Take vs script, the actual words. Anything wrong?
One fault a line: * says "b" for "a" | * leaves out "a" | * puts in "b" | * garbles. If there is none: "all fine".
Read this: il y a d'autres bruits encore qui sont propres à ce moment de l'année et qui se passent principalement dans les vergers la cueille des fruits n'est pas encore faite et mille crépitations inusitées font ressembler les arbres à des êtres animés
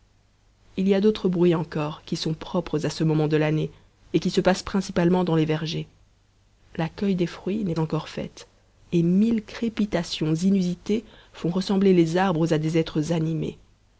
* leaves out "pas"